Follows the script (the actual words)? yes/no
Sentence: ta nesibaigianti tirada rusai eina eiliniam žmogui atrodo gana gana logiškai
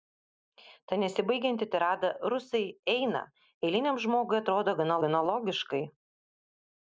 yes